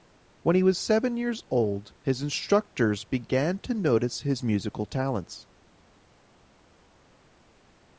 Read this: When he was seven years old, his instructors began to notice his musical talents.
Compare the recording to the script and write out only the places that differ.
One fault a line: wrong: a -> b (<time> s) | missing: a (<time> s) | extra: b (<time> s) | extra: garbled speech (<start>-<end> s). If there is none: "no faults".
no faults